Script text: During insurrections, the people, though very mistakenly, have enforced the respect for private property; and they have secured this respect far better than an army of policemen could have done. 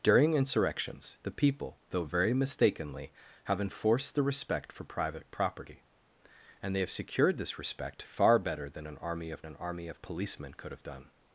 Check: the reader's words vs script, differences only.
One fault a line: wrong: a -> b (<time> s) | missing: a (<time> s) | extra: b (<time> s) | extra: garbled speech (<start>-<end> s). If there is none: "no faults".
extra: an army of (9.5 s)